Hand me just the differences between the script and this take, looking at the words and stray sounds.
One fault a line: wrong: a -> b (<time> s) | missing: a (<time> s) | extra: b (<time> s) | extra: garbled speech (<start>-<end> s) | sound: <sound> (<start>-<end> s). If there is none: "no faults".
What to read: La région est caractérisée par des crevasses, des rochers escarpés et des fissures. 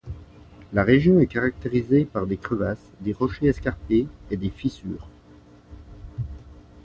no faults